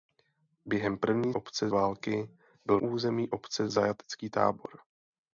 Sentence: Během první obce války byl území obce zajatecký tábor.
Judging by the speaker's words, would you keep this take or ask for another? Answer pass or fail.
pass